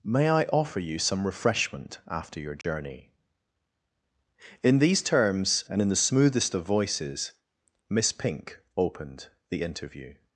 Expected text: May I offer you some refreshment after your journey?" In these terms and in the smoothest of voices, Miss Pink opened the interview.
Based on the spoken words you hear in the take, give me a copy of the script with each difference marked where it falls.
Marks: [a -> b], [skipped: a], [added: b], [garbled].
May I offer you some refreshment after your journey?" In these terms and in the smoothest of voices, Miss Pink opened the interview.